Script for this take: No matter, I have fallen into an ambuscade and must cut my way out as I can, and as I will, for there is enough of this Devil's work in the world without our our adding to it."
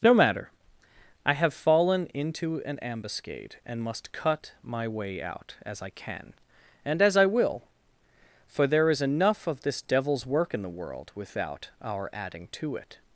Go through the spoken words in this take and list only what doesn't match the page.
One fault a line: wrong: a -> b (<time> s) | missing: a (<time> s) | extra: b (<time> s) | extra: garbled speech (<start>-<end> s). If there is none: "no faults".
missing: our (12.1 s)